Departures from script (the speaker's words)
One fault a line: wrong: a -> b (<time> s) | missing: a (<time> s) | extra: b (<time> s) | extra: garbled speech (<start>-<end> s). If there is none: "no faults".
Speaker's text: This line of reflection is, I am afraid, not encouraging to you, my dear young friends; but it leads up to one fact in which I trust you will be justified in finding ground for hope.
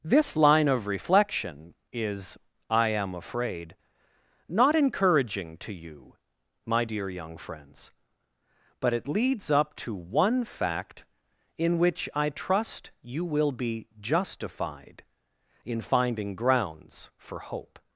wrong: ground -> grounds (16.3 s)